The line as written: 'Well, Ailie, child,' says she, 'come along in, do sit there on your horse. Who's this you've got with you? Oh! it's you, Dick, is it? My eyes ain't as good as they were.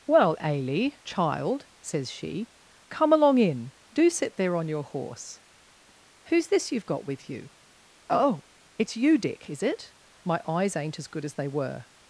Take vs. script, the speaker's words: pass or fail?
pass